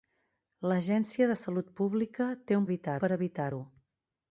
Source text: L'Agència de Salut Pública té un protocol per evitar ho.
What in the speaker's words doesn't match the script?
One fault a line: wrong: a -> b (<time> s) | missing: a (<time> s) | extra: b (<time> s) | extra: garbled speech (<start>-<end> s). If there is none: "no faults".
wrong: protocol -> evitar (2.7 s)